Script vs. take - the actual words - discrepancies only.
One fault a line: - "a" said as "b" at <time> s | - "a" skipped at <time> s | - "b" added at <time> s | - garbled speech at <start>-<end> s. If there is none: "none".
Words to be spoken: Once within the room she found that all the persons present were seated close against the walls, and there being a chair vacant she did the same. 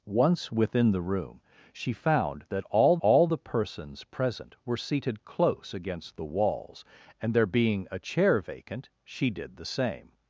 - "all" added at 3.0 s